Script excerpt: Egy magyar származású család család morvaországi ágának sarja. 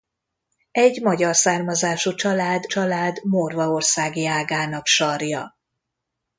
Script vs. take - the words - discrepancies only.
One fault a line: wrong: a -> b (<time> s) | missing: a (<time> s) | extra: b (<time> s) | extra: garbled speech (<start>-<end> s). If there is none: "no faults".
no faults